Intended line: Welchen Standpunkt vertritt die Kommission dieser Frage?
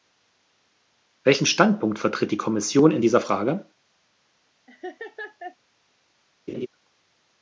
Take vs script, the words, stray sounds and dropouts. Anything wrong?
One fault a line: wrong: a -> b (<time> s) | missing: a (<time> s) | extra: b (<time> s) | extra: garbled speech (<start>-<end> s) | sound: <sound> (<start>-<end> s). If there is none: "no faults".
extra: in (2.9 s)
sound: laugh (4.7-5.6 s)
sound: laugh (6.5-6.7 s)